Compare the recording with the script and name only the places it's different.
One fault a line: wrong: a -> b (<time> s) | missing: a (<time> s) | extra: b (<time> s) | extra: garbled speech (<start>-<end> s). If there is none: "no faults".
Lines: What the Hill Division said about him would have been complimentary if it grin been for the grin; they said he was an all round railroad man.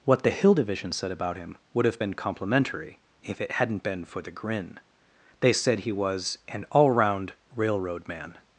wrong: grin -> hadn't (3.5 s)